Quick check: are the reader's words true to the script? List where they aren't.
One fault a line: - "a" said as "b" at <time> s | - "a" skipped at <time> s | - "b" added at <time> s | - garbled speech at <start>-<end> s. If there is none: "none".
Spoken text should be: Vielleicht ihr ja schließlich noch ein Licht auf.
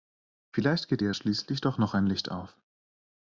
- "geht" added at 0.9 s
- "doch" added at 1.6 s